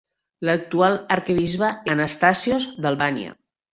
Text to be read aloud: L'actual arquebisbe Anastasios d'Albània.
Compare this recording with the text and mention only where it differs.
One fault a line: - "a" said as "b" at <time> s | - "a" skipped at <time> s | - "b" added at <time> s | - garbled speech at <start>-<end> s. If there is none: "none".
none